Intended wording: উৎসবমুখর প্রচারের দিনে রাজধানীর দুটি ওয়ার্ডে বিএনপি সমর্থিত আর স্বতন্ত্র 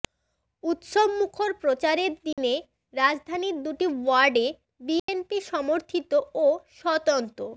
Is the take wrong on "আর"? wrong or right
wrong